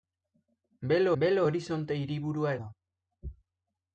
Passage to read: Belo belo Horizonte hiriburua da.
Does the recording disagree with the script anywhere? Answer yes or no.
no